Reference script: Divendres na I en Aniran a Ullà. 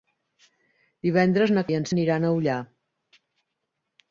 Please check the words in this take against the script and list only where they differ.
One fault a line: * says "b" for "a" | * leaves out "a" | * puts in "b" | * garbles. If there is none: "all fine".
all fine